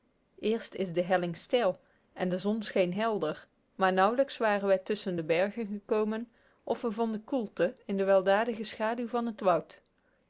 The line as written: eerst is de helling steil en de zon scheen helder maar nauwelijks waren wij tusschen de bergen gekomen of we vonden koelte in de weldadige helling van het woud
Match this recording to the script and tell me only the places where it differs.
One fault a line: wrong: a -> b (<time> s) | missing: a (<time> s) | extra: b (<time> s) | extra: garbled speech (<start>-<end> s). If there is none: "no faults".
wrong: helling -> schaduw (8.6 s)